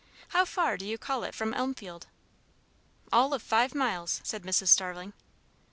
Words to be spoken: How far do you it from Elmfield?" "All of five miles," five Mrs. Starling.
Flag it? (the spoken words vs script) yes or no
yes